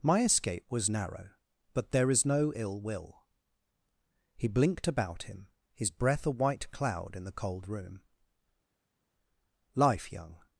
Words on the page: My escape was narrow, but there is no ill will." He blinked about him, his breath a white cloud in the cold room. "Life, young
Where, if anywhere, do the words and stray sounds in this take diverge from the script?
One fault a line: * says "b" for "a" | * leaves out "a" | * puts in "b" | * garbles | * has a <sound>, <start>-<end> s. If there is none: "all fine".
all fine